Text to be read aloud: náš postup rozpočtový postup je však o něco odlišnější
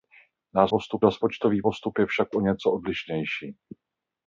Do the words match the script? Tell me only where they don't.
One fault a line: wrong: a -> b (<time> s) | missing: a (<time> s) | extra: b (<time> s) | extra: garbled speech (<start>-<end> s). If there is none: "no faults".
no faults